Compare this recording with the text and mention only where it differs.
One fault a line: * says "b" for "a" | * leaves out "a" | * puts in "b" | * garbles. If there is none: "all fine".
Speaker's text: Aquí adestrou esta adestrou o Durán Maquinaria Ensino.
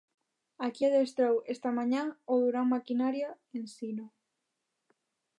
* says "mañá" for "adestrou"